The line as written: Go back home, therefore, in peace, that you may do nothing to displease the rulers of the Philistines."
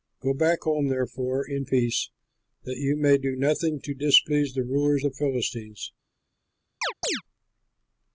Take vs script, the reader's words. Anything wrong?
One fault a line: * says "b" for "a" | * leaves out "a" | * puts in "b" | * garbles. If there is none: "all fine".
* leaves out "of"